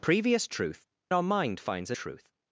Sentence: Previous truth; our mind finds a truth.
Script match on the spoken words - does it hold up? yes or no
yes